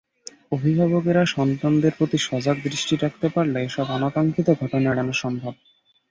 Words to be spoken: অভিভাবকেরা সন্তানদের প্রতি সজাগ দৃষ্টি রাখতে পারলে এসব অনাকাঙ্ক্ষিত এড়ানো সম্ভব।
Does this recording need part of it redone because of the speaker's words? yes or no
yes